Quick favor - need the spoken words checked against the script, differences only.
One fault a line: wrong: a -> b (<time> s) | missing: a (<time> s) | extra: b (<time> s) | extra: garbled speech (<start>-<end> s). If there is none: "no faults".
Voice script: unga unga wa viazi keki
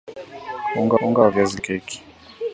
no faults